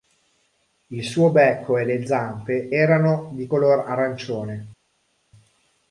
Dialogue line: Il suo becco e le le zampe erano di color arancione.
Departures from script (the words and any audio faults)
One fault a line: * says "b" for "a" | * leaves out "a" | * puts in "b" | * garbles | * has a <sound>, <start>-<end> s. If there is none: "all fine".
* leaves out "le"